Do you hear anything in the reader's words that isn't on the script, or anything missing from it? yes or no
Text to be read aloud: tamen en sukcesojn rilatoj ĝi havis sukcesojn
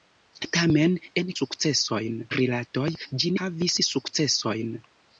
no